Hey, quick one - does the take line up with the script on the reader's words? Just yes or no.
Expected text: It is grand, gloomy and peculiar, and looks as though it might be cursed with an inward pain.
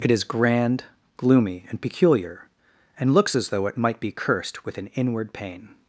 yes